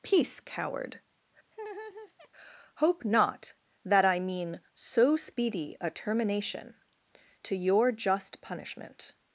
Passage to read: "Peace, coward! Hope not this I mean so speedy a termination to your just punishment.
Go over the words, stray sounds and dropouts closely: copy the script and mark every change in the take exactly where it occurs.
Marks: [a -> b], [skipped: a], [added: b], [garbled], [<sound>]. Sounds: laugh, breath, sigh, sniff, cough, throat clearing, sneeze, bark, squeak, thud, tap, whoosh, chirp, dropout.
"Peace, coward! [laugh] Hope not [this -> that] I mean so speedy a termination to your just punishment.